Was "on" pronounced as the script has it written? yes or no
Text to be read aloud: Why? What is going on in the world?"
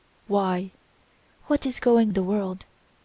no